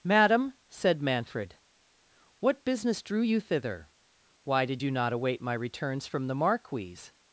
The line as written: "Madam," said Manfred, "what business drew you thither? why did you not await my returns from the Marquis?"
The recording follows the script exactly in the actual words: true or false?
true